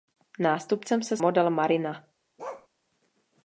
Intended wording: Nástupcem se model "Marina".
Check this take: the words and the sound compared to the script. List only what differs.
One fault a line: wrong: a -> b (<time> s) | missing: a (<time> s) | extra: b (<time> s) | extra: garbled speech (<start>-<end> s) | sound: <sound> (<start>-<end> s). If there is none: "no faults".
sound: bark (2.4-2.7 s)